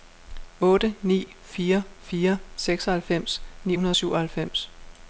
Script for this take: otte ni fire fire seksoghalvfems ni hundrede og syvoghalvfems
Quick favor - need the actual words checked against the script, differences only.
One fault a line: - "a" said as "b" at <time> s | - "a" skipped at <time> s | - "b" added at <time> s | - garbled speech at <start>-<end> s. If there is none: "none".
none